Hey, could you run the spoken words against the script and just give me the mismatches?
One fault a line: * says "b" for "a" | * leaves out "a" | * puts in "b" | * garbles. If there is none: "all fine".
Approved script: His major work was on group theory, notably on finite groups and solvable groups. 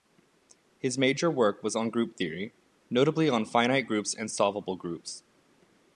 all fine